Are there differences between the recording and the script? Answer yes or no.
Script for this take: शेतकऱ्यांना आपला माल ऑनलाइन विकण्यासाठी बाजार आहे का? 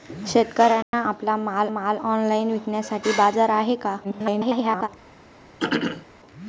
yes